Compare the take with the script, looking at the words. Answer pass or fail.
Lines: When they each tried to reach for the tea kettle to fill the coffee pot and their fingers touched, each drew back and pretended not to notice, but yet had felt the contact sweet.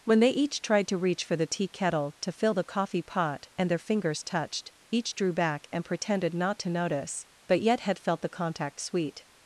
pass